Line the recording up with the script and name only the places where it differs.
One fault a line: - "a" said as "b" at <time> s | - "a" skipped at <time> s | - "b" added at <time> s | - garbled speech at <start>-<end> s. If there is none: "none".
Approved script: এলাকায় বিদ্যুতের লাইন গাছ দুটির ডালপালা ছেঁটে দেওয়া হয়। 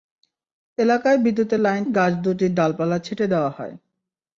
none